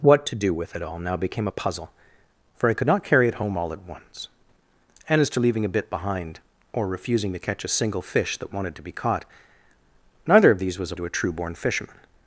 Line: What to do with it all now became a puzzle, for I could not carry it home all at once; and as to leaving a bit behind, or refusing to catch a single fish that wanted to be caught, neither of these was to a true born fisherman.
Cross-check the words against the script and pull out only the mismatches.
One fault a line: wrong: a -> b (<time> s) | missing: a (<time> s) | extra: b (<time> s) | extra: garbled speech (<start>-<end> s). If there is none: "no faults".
no faults